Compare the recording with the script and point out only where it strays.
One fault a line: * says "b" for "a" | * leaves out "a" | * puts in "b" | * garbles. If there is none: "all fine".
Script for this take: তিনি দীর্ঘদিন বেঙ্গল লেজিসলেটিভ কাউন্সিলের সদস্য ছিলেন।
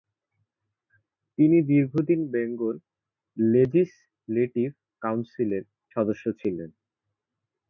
all fine